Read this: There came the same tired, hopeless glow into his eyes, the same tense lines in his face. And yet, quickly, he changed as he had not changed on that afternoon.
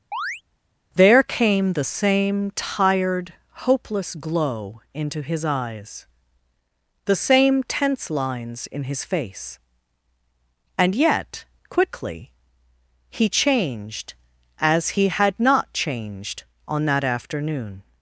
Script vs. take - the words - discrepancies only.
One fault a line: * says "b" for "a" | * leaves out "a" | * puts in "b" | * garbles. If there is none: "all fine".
all fine